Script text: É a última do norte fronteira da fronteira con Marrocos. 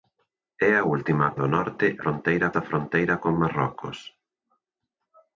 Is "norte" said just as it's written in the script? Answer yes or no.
yes